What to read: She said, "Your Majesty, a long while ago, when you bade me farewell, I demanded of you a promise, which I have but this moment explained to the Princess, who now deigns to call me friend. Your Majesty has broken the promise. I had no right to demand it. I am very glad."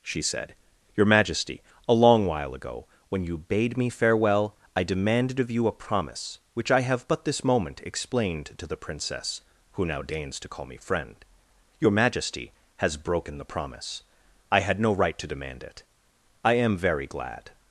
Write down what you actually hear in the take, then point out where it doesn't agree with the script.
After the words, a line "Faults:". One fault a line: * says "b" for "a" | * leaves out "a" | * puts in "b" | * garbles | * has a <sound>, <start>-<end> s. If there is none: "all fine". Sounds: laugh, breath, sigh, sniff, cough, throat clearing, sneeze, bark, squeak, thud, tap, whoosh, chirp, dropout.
She said, "Your Majesty, a long while ago, when you bade me farewell, I demanded of you a promise, which I have but this moment explained to the Princess, who now deigns to call me friend. Your Majesty has broken the promise. I had no right to demand it. I am very glad."
Faults:
all fine